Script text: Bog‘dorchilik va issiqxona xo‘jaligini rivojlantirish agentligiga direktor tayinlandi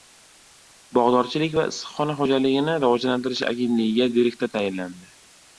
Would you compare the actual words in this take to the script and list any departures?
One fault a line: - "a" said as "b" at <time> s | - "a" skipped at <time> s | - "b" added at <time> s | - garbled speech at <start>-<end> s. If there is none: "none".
none